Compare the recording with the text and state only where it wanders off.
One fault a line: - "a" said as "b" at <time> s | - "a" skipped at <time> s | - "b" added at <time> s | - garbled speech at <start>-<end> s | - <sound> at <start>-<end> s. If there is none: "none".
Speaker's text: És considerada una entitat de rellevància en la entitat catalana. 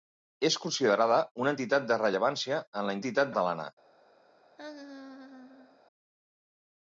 - laugh at 4.6-5.8 s